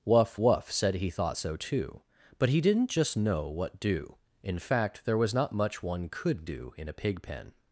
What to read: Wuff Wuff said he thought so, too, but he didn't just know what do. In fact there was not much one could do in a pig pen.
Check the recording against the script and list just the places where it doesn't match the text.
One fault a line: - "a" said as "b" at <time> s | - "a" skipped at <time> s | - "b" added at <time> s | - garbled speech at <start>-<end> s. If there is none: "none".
none